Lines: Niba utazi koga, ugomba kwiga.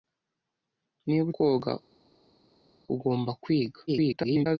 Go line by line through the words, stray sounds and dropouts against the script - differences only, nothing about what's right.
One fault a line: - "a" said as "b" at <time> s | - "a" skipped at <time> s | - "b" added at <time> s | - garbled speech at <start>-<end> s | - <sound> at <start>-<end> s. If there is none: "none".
- "utazi" skipped at 1.3 s
- garbled speech at 3.9-4.6 s